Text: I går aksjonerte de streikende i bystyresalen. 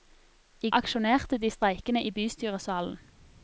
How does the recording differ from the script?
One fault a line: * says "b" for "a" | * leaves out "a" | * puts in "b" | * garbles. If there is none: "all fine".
* leaves out "går"